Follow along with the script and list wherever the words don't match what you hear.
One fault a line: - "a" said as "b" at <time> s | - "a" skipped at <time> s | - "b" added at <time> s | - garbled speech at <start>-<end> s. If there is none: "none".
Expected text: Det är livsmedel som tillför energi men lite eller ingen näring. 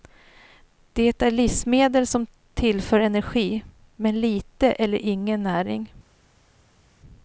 none